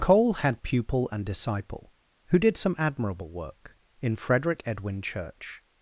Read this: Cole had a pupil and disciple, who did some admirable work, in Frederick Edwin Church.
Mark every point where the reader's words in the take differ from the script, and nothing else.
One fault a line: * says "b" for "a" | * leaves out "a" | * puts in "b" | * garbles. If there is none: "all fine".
* leaves out "a"